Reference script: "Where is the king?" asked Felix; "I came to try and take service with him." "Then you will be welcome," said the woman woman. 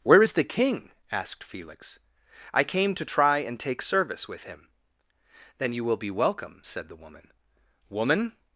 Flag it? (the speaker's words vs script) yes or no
no